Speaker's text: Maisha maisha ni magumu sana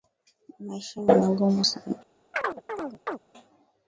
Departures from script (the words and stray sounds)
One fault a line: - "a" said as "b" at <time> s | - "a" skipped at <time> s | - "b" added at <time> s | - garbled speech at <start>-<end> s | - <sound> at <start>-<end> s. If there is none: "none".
- "maisha" skipped at 1.0 s
- chirp at 2.3-3.2 s